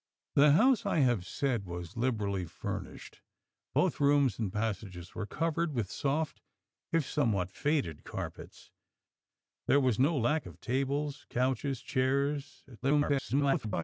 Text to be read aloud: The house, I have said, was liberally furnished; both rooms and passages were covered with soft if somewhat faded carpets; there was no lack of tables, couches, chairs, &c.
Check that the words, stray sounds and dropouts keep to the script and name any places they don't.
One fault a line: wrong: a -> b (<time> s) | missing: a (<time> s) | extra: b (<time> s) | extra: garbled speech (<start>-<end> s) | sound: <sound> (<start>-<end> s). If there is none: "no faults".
extra: garbled speech (12.8-13.8 s)